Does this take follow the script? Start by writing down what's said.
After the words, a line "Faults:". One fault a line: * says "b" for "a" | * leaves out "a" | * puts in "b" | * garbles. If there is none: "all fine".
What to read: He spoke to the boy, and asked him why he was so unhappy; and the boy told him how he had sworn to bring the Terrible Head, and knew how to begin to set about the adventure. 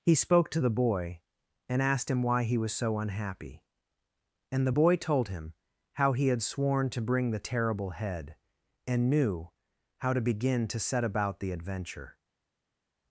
He spoke to the boy, and asked him why he was so unhappy; and the boy told him how he had sworn to bring the Terrible Head, and knew how to begin to set about the adventure.
Faults:
all fine